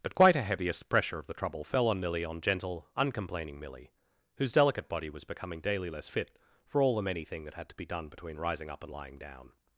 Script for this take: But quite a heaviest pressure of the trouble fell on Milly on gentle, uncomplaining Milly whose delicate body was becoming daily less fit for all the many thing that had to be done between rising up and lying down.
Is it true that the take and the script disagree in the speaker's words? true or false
false